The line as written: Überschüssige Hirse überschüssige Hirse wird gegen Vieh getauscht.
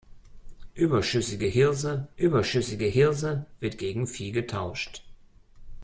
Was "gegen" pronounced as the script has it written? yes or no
yes